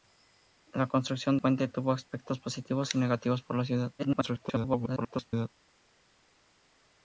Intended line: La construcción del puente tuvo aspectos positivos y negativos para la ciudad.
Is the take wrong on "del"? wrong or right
wrong